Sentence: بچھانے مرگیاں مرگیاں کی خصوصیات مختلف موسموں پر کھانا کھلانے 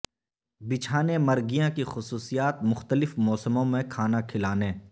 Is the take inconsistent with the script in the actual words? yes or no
yes